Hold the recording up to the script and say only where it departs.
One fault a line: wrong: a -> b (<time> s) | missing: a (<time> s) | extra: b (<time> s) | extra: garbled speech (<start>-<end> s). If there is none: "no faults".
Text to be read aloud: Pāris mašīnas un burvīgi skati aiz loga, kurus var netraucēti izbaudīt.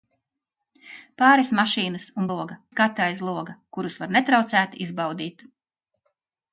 wrong: burvīgi -> loga (2.3 s)